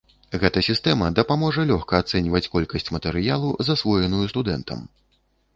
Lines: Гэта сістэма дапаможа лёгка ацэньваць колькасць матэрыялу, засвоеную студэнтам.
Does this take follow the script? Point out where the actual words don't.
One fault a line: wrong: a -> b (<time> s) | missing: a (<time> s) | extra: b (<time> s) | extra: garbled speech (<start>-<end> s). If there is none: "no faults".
no faults